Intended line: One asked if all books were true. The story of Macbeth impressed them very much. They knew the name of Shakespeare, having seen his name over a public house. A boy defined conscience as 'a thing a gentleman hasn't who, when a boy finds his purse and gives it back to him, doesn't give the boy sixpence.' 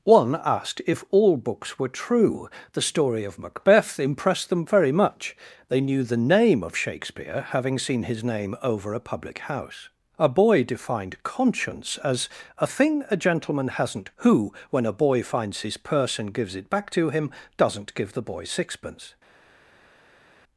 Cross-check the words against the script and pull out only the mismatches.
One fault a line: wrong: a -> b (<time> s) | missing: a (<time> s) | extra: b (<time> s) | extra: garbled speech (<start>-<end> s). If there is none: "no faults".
no faults